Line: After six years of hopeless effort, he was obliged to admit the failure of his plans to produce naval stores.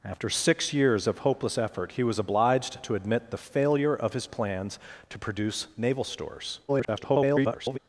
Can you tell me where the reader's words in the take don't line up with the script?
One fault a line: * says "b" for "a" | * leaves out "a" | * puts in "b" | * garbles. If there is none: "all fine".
* garbles